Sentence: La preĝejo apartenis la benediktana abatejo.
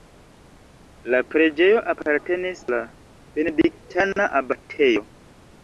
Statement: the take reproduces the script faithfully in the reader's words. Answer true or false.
true